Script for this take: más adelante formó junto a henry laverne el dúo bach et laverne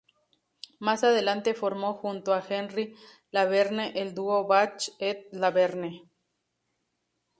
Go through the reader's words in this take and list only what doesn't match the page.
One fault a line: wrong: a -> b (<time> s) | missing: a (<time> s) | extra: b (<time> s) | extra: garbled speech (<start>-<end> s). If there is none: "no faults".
no faults